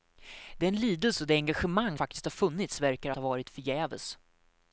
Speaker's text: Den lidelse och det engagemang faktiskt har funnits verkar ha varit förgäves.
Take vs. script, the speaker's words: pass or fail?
pass